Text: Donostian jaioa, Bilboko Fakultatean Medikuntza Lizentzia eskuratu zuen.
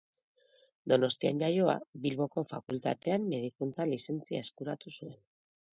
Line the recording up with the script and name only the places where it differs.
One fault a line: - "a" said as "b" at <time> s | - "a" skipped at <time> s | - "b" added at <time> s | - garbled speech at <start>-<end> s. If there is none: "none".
none